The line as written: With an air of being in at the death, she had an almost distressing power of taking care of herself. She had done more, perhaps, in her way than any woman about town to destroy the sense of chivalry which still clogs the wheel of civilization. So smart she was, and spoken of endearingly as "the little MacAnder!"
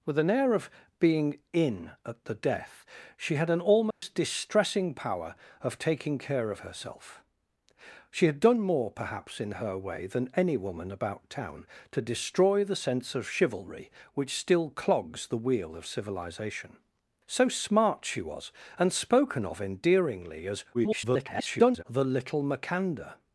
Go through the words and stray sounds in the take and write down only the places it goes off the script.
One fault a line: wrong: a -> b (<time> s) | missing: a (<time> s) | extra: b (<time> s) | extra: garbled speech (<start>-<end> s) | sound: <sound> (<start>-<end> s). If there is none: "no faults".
sound: dropout (3.9-4.0 s)
extra: garbled speech (20.7-21.8 s)